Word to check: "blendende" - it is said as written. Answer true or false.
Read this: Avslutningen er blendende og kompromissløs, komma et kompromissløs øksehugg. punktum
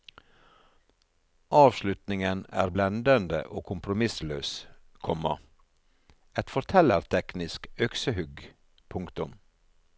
true